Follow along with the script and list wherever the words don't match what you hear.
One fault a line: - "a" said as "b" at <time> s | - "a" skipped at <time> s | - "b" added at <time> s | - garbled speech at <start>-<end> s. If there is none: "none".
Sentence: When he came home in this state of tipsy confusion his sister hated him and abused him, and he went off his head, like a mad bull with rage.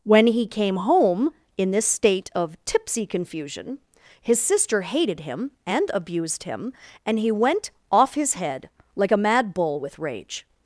none